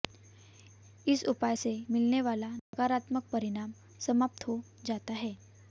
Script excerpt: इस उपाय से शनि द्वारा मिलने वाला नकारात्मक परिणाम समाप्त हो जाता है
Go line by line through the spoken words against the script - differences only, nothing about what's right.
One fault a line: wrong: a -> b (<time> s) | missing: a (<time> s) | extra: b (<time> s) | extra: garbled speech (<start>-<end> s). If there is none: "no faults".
missing: शनि द्वारा (1.9 s)